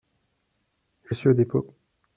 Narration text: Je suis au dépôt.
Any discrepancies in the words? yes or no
no